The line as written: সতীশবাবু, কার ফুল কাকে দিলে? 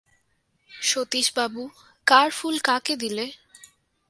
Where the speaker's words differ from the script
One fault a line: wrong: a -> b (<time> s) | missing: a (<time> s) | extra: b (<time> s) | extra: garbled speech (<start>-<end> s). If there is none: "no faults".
no faults